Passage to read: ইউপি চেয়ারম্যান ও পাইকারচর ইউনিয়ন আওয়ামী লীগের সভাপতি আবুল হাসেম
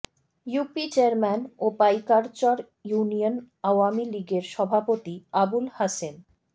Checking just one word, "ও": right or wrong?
right